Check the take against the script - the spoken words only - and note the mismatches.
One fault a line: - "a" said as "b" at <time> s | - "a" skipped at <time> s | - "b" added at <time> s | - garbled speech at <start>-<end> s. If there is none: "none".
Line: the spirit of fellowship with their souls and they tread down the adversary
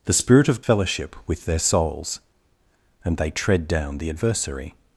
none